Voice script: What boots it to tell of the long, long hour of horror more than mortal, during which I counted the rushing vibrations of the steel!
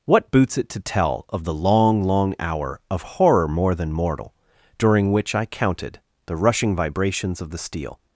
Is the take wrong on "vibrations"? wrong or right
right